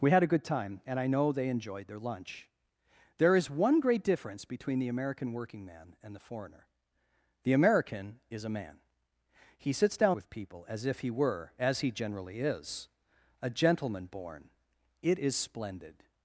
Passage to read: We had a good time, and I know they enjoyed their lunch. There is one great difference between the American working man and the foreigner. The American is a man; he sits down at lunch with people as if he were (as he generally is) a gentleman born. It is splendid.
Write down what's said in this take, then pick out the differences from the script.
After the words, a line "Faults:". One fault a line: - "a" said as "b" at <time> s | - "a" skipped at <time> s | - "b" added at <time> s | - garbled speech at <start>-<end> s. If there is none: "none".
We had a good time, and I know they enjoyed their lunch. There is one great difference between the American working man and the foreigner. The American is a man; he sits down with people as if he were (as he generally is) a gentleman born. It is splendid.
Faults:
- "at lunch" skipped at 10.2 s